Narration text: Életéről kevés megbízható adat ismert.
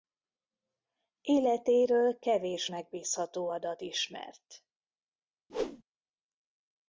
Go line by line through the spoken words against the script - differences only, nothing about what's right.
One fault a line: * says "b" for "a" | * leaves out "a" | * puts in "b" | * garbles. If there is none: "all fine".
all fine